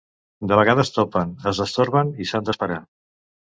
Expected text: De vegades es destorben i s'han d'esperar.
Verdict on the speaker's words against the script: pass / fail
fail